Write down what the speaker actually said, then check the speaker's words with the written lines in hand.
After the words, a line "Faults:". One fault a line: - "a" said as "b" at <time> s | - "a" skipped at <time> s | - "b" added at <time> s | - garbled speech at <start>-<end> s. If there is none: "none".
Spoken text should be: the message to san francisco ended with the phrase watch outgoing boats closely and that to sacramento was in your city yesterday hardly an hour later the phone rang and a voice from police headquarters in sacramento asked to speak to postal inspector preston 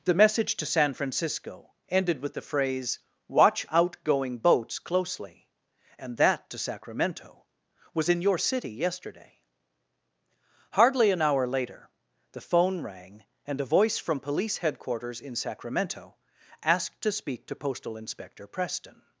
the message to san francisco ended with the phrase watch outgoing boats closely and that to sacramento was in your city yesterday hardly an hour later the phone rang and a voice from police headquarters in sacramento asked to speak to postal inspector preston
Faults:
none